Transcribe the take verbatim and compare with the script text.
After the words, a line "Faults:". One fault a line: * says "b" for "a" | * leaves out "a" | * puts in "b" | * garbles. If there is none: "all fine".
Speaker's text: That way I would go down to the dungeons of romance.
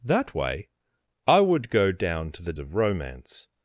That way I would go down to the of romance.
Faults:
* leaves out "dungeons"